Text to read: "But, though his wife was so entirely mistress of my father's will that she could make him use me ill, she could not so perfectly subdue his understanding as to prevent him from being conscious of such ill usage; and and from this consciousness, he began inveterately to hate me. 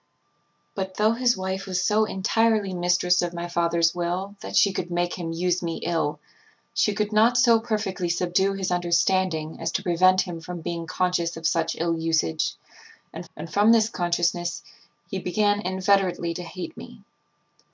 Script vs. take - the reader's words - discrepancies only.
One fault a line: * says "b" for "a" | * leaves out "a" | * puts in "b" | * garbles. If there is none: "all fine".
all fine